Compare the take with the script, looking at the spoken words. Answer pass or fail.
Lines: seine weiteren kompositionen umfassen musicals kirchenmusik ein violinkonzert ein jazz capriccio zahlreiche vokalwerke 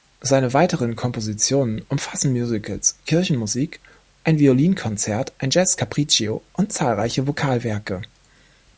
fail